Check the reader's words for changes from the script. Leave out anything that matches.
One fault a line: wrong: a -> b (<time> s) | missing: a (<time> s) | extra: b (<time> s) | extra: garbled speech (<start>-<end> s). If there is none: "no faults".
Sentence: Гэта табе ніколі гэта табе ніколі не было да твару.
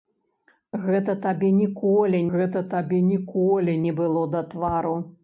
no faults